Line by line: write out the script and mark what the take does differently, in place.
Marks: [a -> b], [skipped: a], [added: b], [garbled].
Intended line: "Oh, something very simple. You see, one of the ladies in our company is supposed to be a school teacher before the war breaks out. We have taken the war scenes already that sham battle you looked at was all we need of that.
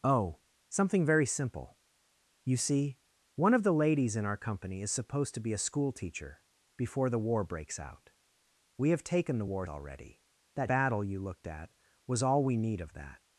"Oh, something very simple. You see, one of the ladies in our company is supposed to be a school teacher before the war breaks out. We have taken the war [skipped: scenes] already that [skipped: sham] battle you looked at was all we need of that.